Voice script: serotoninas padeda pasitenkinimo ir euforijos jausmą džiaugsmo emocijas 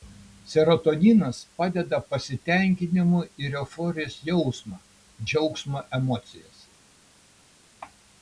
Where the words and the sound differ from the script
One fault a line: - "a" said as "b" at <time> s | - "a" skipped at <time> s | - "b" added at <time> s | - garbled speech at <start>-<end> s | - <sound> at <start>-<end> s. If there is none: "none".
none